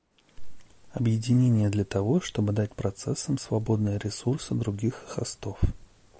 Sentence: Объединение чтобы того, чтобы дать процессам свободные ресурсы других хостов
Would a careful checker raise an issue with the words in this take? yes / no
yes